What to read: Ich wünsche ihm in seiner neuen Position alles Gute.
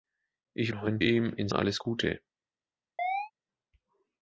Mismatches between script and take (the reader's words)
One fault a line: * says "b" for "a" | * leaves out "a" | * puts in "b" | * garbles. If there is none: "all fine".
* says "neuen" for "wünsche"
* leaves out "seiner neuen Position"